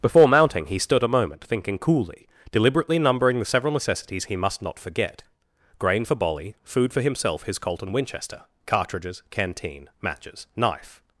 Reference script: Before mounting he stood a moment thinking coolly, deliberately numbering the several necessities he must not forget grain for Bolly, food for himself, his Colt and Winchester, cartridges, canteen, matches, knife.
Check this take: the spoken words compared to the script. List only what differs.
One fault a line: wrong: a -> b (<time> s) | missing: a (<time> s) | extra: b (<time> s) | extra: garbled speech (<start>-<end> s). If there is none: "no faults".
no faults